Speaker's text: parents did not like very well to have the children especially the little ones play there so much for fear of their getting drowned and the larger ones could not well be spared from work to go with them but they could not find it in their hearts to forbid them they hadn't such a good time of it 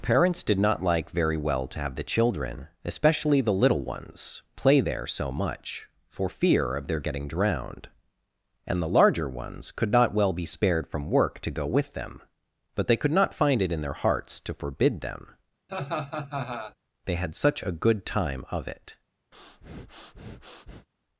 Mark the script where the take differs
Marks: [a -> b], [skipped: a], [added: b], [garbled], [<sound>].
parents did not like very well to have the children especially the little ones play there so much for fear of their getting drowned and the larger ones could not well be spared from work to go with them but they could not find it in their hearts to forbid them [laugh] they [hadn't -> had] such a good time of it [breath]